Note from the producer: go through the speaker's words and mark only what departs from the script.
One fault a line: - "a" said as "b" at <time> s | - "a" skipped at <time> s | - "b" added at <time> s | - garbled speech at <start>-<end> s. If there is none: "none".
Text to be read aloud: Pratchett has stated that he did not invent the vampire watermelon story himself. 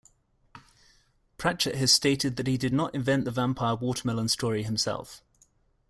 none